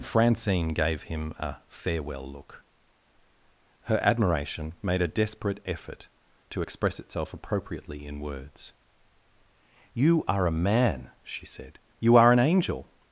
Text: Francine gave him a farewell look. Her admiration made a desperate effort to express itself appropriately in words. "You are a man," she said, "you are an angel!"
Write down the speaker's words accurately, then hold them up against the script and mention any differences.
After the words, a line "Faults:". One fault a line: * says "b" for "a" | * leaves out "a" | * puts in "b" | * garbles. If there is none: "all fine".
Francine gave him a farewell look. Her admiration made a desperate effort to express itself appropriately in words. "You are a man," she said, "you are an angel!"
Faults:
all fine